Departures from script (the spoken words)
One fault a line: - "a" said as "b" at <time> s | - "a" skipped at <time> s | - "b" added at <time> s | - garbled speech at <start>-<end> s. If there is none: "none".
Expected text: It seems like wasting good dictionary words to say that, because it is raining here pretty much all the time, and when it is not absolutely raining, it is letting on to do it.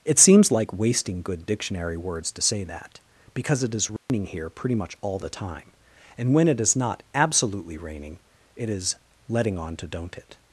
- "do" said as "don't" at 9.9 s